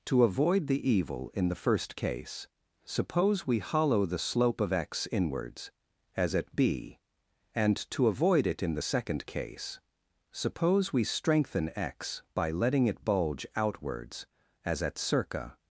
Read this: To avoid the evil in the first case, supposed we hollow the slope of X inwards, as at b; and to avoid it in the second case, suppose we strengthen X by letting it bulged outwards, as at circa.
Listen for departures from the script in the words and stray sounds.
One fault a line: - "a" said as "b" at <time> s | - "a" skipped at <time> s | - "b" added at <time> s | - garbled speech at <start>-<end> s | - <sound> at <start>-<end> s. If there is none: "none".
- "supposed" said as "suppose" at 2.9 s
- "bulged" said as "bulge" at 13.0 s